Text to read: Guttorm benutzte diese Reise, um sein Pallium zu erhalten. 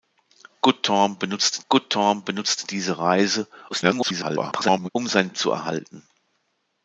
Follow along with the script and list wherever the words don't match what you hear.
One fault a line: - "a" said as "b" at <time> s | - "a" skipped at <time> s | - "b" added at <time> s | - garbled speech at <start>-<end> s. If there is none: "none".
- "guttorm benutzte" added at 1.7 s
- garbled speech at 3.7-4.9 s
- "Pallium" skipped at 5.4 s